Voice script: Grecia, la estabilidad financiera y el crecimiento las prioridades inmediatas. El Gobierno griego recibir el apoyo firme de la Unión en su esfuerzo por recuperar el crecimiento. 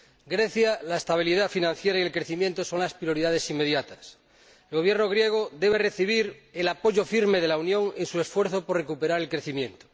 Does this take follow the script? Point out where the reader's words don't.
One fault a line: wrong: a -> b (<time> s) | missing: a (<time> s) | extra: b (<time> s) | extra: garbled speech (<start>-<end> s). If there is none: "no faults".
extra: son (2.6 s)
extra: debe (5.5 s)